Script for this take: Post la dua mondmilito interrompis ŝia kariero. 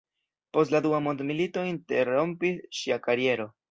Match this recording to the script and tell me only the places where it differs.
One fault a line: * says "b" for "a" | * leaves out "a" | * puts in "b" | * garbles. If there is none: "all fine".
all fine